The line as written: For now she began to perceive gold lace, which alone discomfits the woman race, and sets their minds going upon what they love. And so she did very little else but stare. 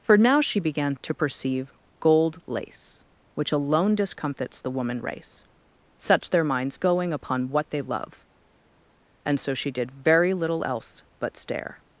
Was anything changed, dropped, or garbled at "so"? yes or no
no